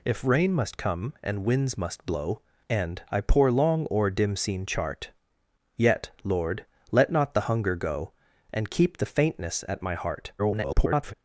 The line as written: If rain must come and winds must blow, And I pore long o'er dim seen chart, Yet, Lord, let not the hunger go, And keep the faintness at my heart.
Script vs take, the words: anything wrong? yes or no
yes